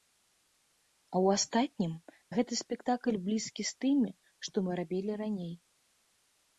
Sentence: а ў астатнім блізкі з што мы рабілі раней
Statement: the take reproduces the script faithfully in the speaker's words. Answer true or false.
false